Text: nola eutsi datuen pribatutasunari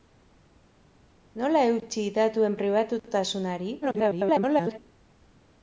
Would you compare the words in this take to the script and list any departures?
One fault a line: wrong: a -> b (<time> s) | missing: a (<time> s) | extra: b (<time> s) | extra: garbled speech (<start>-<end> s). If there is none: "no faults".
extra: garbled speech (3.8-4.8 s)